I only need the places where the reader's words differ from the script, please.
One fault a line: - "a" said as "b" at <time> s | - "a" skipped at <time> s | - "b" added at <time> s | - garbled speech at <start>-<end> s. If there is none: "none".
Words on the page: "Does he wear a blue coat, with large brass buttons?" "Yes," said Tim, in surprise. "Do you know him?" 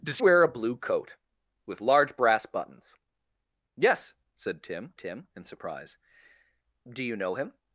- "he" skipped at 0.2 s
- "Tim" added at 5.0 s